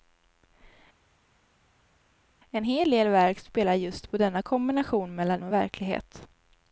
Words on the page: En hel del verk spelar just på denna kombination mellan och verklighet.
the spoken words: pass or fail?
pass